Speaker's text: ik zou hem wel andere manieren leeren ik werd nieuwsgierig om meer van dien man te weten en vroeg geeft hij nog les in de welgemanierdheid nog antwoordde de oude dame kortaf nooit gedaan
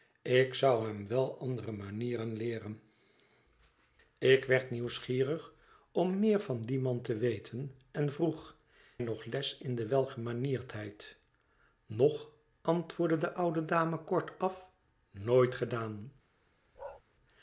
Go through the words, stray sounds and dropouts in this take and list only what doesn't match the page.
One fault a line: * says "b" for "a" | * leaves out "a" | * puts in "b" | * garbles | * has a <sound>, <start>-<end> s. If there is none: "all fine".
* leaves out "geeft hij"
* has a bark, 16.8-17.0 s